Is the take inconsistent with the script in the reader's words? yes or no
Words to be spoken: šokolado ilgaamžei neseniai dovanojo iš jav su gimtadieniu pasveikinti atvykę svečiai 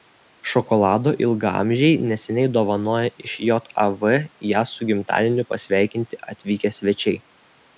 yes